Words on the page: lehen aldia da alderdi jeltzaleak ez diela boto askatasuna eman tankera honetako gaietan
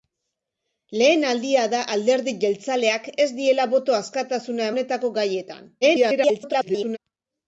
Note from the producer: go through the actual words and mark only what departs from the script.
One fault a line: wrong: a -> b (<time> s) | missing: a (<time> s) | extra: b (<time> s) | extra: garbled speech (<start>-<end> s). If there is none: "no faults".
missing: eman tankera (4.7 s)
extra: garbled speech (5.8-7.0 s)